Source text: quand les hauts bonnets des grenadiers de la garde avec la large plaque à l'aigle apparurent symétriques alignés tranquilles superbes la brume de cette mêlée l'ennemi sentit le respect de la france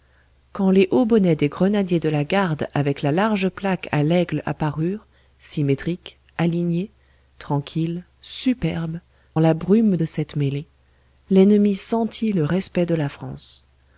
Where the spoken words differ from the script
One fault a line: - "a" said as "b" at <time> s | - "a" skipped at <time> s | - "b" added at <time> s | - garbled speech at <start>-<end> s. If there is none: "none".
none